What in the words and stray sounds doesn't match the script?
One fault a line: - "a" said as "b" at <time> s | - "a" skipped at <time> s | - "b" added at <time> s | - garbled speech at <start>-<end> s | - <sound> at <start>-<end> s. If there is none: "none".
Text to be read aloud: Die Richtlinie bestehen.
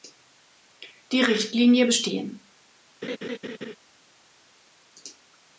- laugh at 3.0-3.8 s